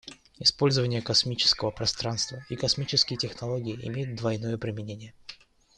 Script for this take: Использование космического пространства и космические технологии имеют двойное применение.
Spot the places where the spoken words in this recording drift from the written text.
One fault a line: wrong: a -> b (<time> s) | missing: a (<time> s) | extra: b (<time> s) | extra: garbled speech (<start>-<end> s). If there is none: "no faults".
no faults